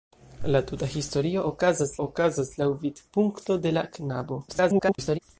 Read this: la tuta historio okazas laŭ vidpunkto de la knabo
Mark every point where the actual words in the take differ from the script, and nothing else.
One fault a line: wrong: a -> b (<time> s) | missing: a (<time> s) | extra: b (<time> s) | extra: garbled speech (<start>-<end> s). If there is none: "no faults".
extra: okazas (2.0 s)
extra: garbled speech (4.5-5.2 s)